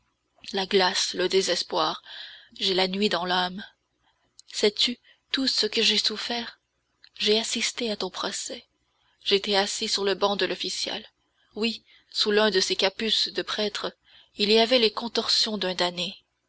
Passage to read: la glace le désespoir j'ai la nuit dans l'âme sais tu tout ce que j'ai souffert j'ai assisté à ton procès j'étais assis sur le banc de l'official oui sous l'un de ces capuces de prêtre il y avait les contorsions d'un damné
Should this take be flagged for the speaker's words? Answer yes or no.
no